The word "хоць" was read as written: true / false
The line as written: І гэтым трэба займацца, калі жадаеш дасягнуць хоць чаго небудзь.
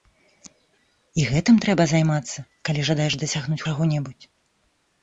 false